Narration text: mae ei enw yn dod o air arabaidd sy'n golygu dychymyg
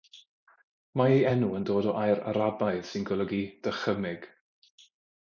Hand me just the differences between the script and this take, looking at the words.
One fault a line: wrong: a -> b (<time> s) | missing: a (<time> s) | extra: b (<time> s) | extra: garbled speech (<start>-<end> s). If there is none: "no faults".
no faults